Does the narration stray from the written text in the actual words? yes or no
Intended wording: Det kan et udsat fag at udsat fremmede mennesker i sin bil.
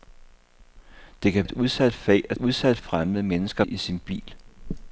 no